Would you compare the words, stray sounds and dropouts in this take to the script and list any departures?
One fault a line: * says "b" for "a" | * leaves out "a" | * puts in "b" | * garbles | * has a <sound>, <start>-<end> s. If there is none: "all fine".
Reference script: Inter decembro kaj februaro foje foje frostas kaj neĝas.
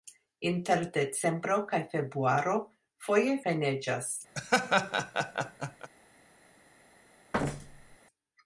* leaves out "foje frostas"
* has a laugh, 4.3-5.9 s
* has a thud, 7.3-8.0 s